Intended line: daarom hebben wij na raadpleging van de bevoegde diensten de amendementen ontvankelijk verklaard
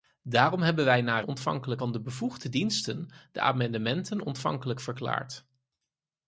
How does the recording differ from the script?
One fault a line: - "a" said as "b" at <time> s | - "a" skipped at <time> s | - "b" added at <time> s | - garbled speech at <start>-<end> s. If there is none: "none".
- "raadpleging" said as "ontvankelijk" at 1.2 s